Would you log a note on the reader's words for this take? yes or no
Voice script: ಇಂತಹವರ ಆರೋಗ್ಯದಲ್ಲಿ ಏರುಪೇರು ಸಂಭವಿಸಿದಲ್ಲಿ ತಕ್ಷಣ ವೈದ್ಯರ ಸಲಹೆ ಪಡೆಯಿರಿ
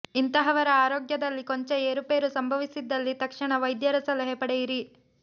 yes